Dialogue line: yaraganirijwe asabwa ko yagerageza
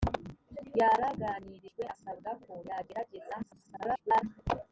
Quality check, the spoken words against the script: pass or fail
fail